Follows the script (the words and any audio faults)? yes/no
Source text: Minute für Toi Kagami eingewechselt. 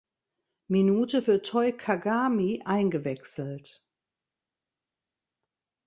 yes